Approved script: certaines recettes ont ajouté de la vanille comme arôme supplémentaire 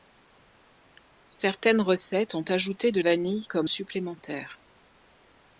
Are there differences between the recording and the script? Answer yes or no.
yes